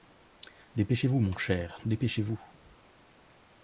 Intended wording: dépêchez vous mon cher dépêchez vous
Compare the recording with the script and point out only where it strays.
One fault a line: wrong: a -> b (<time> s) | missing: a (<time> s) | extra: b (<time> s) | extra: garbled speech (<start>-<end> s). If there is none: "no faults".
no faults